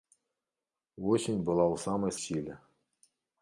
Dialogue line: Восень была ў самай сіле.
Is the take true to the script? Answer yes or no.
yes